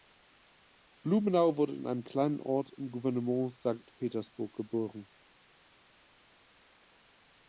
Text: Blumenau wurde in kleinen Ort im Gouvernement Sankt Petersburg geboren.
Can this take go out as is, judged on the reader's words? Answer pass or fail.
fail